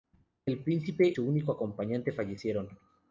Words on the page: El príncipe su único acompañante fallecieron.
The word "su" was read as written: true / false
true